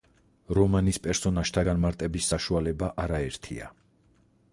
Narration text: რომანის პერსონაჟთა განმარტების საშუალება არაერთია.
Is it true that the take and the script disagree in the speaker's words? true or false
false